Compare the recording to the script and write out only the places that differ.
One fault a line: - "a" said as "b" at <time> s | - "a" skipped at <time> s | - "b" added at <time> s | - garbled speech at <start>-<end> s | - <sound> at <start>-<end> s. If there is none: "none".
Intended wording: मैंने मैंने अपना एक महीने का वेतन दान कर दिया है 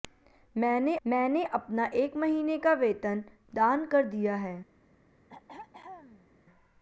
- throat clearing at 5.3-6.3 s